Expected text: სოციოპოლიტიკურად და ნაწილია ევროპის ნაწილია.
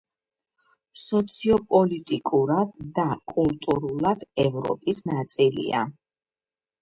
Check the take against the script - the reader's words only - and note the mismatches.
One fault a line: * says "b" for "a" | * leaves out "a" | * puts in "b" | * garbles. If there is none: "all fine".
* says "კულტურულად" for "ნაწილია"